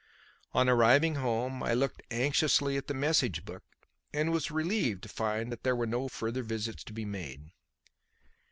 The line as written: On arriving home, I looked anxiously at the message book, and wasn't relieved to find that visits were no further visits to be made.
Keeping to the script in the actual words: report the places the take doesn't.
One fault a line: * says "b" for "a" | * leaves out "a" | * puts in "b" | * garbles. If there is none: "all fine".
* says "was" for "wasn't"
* says "there" for "visits"